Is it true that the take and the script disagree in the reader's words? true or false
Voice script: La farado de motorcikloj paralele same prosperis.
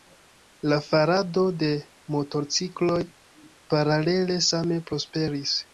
false